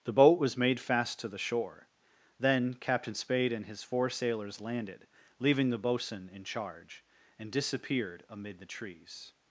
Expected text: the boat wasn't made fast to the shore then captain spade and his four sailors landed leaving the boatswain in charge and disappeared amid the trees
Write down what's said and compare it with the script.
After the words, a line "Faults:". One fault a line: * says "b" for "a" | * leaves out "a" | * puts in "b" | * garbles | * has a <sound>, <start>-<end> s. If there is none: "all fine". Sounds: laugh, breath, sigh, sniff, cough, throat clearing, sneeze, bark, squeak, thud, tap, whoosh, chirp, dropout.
the boat was made fast to the shore then captain spade and his four sailors landed leaving the boatswain in charge and disappeared amid the trees
Faults:
* says "was" for "wasn't"